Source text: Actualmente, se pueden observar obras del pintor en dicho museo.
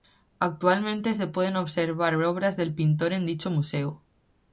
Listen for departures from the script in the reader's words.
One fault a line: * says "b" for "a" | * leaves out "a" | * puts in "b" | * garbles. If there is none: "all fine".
all fine